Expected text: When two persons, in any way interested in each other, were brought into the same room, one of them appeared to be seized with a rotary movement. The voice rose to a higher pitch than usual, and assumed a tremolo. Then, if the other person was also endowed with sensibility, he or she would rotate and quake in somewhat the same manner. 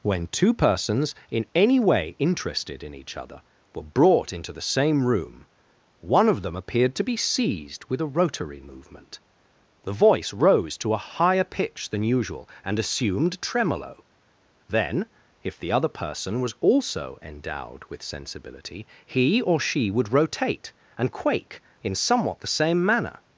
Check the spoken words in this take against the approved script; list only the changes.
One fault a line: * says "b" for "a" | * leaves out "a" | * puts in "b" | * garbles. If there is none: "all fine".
* leaves out "a"